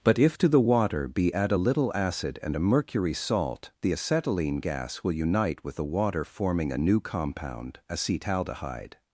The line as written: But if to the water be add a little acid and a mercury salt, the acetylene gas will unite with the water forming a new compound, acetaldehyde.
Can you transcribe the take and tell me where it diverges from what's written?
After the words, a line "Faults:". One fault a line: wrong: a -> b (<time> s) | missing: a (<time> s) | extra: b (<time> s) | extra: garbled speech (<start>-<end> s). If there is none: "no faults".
But if to the water be add a little acid and a mercury salt, the acetylene gas will unite with the water forming a new compound, acetaldehyde.
Faults:
no faults